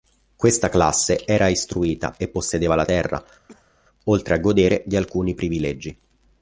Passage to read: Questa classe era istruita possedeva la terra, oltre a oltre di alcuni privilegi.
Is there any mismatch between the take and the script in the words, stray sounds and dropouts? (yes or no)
yes